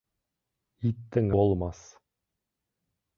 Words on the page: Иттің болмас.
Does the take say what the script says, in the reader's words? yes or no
yes